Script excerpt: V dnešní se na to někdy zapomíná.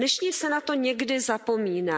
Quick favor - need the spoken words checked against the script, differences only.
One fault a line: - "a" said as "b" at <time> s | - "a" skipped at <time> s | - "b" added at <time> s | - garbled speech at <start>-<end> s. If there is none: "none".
none